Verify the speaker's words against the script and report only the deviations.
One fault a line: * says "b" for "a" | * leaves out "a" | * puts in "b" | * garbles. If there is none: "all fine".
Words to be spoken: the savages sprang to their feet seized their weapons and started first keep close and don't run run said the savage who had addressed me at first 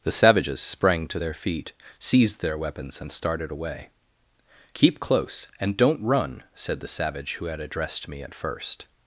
* says "away" for "first"
* leaves out "run"